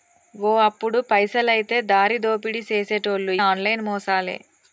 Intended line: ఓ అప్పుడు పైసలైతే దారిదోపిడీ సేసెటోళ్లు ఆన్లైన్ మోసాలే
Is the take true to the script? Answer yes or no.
yes